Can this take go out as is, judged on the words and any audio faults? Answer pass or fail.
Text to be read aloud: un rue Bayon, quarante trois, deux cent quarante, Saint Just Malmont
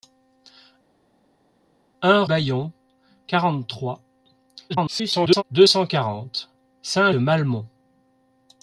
fail